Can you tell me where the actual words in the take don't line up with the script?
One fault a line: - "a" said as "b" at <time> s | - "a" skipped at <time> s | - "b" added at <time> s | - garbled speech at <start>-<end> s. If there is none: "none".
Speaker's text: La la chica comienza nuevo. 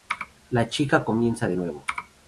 - "la" skipped at 0.7 s
- "de" added at 1.5 s